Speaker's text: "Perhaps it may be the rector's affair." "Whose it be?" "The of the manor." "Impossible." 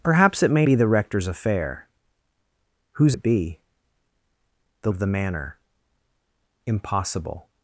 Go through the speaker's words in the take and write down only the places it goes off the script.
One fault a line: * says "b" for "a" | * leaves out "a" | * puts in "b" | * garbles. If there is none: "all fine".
all fine